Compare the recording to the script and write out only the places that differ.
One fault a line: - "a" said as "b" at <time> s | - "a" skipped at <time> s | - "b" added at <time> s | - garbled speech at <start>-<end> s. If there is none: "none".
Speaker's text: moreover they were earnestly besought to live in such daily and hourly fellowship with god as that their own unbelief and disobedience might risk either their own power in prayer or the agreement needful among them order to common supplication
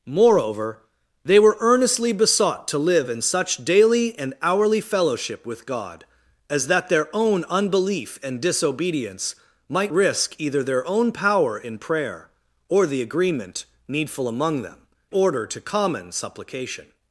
none